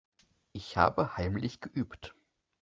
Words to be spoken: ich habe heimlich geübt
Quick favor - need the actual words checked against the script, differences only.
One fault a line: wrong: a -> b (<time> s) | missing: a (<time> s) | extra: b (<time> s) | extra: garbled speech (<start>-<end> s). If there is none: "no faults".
no faults